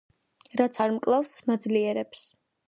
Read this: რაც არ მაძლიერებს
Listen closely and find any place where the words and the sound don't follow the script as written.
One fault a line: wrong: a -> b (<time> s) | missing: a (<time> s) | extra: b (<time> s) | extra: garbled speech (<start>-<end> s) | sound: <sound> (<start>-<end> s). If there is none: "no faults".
extra: მკლავს (1.0 s)